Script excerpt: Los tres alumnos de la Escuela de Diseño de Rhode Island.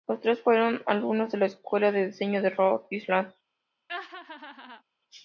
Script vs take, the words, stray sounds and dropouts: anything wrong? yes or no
yes